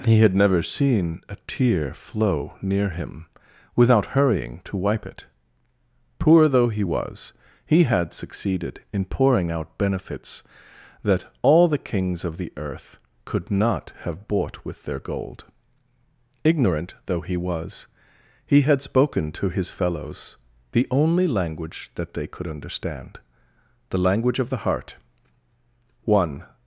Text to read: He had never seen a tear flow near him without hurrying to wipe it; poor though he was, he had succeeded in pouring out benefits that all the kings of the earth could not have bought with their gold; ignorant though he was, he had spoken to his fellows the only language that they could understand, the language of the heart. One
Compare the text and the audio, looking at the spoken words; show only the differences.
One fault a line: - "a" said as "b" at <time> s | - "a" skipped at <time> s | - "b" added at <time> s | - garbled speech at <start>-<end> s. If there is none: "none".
none